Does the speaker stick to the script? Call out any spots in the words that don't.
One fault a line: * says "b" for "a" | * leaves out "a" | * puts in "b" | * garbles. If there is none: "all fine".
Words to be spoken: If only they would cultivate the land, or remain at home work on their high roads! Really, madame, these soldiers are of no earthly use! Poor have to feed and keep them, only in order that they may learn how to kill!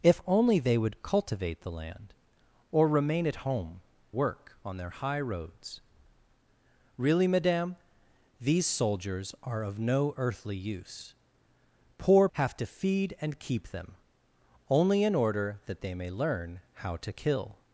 all fine